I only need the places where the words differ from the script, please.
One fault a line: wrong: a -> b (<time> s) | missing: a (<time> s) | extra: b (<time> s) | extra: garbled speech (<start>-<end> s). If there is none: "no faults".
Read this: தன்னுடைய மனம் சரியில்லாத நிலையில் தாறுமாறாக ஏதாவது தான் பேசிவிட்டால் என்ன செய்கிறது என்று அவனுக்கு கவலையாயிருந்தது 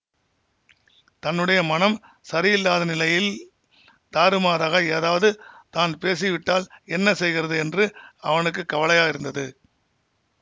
no faults